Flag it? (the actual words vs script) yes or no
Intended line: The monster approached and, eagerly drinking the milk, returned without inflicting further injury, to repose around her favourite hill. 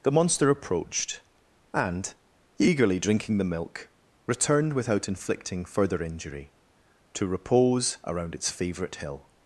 yes